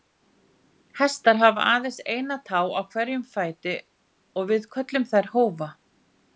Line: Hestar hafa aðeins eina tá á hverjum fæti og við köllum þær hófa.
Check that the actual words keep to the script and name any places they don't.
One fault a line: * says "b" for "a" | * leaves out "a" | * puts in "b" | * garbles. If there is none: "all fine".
all fine